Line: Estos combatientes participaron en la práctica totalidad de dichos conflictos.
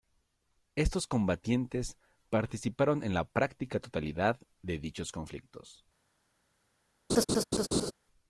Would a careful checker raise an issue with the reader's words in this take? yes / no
no